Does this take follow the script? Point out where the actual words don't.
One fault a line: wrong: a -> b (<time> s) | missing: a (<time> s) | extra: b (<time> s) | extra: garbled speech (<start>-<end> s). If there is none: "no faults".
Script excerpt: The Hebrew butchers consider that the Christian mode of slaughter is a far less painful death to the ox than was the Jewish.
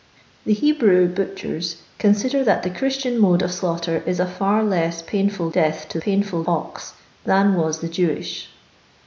wrong: the -> painful (6.0 s)